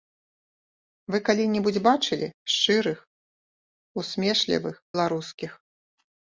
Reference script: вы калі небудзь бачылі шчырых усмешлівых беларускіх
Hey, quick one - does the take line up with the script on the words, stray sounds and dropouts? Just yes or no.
yes